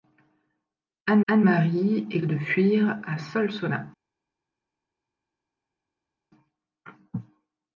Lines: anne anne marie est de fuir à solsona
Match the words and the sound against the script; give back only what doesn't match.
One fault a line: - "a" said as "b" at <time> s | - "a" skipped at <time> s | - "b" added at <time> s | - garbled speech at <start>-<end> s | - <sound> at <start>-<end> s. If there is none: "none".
none